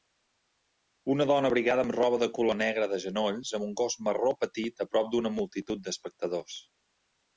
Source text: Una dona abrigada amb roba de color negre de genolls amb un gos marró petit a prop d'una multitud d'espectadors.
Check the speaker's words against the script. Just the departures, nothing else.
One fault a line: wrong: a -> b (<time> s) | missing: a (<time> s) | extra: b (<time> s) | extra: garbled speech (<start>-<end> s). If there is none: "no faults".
no faults